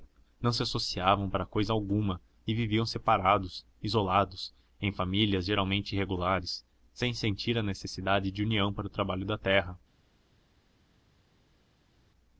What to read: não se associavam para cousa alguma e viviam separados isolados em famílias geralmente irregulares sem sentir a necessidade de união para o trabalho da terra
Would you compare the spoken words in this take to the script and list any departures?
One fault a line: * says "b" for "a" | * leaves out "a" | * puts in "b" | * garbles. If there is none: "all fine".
all fine